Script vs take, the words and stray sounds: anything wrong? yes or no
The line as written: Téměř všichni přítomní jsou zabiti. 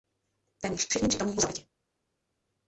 yes